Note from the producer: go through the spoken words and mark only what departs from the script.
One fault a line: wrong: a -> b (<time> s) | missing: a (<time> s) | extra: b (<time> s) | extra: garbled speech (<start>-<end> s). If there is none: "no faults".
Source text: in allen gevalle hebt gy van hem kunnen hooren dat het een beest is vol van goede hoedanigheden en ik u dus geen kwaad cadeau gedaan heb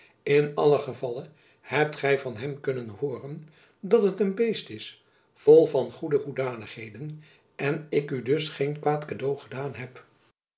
no faults